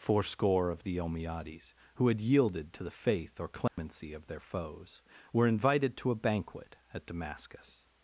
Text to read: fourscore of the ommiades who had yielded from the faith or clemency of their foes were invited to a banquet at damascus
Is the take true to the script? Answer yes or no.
no